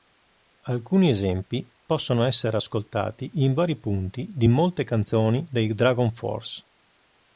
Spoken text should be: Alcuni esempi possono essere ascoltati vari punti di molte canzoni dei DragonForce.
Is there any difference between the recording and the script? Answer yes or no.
yes